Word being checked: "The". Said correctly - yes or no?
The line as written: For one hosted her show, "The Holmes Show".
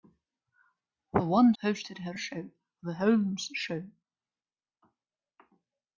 yes